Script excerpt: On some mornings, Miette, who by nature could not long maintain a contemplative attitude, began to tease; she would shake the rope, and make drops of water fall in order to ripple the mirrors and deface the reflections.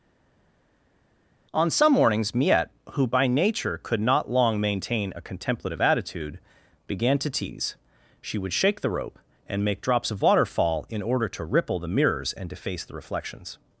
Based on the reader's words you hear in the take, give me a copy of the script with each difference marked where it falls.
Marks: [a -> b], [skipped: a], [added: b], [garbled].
On some mornings, Miette, who by nature could not long maintain a contemplative attitude, began to tease; she would shake the rope, and make drops of water fall in order to ripple the mirrors and deface the reflections.